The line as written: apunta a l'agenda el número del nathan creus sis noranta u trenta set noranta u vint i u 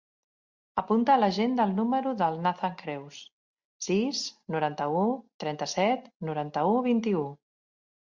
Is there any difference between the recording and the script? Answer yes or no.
no